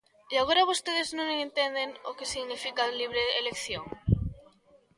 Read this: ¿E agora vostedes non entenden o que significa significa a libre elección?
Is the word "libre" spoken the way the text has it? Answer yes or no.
yes